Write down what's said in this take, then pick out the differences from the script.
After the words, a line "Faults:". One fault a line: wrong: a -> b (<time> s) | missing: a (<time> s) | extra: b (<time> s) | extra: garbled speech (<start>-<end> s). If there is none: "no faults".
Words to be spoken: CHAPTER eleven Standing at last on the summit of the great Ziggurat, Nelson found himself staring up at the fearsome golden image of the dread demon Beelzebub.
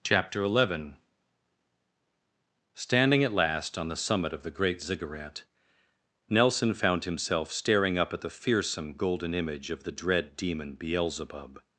CHAPTER eleven Standing at last on the summit of the great Ziggurat, Nelson found himself staring up at the fearsome golden image of the dread demon Beelzebub.
Faults:
no faults